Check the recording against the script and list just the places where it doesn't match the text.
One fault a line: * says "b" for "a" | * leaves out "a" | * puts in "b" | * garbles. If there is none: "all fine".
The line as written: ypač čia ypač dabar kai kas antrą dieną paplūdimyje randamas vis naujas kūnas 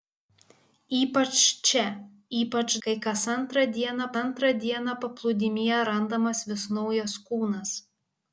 * leaves out "dabar"
* puts in "antrą dieną"